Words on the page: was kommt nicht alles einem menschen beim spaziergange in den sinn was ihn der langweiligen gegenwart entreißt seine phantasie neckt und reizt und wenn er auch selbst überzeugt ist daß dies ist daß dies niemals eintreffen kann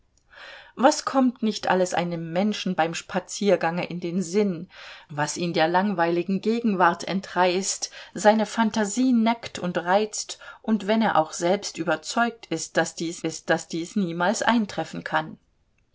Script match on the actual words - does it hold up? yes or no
yes